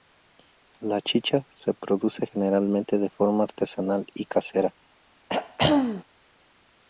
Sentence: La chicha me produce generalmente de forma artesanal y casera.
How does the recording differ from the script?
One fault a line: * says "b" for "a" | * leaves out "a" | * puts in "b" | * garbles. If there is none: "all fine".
* says "se" for "me"